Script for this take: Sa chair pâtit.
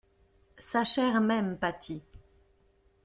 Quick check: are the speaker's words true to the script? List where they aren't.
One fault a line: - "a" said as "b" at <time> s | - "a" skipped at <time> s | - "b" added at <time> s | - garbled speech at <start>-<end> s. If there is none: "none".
- "même" added at 1.2 s